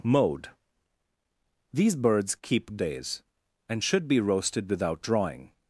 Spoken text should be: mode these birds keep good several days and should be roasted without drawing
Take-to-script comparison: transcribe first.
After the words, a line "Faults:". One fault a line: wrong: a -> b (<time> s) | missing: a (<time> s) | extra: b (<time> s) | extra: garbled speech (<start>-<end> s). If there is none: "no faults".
mode these birds keep days and should be roasted without drawing
Faults:
missing: good several (2.8 s)